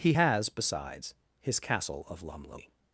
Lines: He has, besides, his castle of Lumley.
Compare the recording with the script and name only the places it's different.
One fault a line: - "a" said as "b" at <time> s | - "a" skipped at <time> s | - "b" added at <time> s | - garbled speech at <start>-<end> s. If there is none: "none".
none